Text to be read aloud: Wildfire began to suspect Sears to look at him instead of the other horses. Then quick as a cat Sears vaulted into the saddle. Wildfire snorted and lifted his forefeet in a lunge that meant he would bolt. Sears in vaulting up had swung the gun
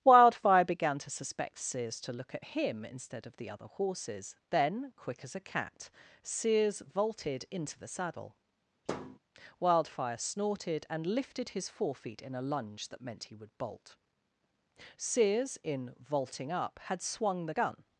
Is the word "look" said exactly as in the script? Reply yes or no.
yes